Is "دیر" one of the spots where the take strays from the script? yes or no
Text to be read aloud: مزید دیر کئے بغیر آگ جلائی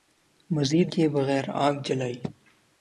yes